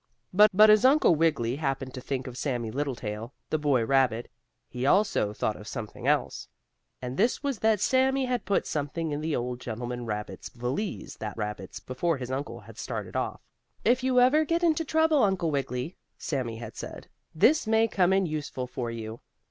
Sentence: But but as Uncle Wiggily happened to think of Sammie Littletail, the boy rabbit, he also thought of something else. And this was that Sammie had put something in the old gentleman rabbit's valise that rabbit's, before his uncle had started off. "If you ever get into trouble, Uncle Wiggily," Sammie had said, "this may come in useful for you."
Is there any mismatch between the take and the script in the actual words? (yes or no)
no